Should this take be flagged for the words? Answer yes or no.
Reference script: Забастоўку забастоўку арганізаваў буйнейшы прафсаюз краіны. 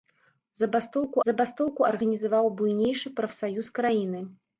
no